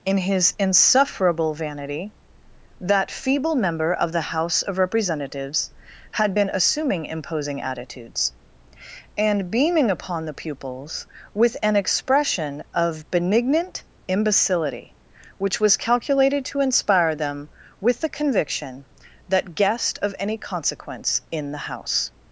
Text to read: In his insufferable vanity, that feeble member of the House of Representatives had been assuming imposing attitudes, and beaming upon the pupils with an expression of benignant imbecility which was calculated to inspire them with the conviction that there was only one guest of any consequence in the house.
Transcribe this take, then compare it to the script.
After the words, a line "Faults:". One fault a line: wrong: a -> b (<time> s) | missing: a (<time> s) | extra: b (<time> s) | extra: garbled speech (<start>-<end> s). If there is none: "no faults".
In his insufferable vanity, that feeble member of the House of Representatives had been assuming imposing attitudes, and beaming upon the pupils with an expression of benignant imbecility which was calculated to inspire them with the conviction that guest of any consequence in the house.
Faults:
missing: there was only one (19.6 s)